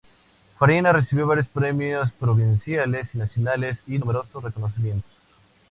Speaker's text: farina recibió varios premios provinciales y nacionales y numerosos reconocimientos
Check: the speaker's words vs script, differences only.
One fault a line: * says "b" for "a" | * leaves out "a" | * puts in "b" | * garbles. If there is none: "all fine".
all fine